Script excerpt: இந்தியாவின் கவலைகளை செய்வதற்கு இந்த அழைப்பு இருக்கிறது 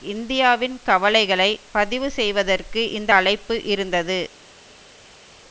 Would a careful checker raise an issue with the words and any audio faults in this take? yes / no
yes